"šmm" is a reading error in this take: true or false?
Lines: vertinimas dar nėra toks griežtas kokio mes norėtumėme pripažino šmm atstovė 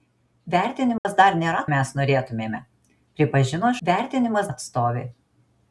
true